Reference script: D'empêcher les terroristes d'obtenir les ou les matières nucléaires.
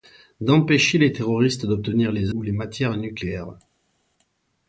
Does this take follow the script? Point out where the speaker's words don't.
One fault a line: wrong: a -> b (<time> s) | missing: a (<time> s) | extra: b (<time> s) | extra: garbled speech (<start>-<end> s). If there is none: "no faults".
no faults